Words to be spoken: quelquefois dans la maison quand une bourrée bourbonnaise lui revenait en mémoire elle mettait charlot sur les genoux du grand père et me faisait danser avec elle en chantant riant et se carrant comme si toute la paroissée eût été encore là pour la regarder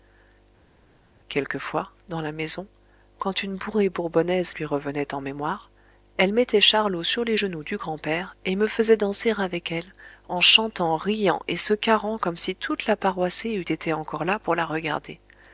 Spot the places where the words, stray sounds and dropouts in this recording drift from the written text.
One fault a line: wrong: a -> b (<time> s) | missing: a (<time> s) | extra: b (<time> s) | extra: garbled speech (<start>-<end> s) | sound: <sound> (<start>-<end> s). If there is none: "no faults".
no faults